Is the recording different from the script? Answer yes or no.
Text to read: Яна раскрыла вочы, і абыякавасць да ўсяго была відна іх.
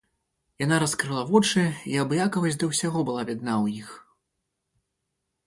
yes